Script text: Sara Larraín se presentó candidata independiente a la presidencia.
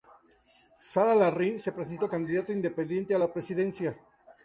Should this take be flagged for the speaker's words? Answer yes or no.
no